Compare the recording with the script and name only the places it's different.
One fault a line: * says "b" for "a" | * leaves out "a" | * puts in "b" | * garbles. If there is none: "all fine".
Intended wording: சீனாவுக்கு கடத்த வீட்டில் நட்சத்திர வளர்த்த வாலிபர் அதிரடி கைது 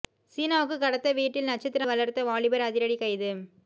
all fine